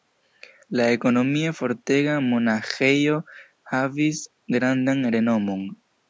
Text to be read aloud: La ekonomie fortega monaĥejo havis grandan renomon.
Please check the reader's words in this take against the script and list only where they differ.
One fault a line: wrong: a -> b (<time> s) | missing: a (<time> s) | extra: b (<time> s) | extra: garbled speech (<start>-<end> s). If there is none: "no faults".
no faults